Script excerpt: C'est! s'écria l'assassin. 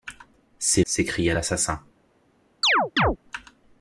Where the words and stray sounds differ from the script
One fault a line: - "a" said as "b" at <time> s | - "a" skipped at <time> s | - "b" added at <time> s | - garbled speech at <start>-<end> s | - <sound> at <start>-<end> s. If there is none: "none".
- chirp at 2.6-3.2 s